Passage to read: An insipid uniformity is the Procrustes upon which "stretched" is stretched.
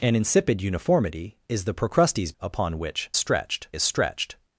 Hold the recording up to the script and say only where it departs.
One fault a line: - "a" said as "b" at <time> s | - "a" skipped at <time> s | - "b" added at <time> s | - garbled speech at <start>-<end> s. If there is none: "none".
none